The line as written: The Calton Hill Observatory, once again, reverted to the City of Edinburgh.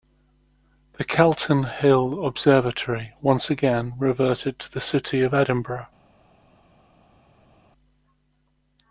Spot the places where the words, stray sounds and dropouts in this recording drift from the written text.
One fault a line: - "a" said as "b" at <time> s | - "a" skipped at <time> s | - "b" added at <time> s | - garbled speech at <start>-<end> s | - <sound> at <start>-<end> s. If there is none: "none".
none